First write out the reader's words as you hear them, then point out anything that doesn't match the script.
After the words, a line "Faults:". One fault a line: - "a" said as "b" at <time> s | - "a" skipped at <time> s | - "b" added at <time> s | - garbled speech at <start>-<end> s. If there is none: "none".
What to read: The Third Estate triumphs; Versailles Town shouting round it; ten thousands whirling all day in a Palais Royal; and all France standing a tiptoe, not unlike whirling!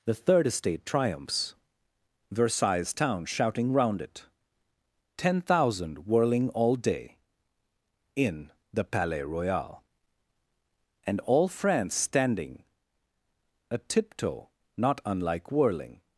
The Third Estate triumphs; Versailles Town shouting round it; ten thousand whirling all day in the Palais Royal; and all France standing a tiptoe, not unlike whirling!
Faults:
- "thousands" said as "thousand" at 5.4 s
- "a" said as "the" at 8.7 s